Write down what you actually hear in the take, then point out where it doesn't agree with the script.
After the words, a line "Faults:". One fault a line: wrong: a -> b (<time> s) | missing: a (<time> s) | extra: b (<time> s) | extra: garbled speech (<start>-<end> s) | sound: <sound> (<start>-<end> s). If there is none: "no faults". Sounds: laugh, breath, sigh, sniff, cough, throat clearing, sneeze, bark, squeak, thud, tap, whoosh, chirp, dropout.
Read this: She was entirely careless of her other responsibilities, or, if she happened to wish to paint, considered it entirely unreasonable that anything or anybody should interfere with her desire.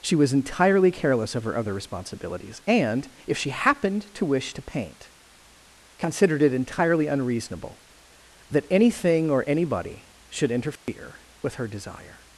She was entirely careless of her other responsibilities, and, if she happened to wish to paint, considered it entirely unreasonable that anything or anybody should interfere with her desire.
Faults:
wrong: or -> and (2.7 s)
sound: dropout (10.8-10.9 s)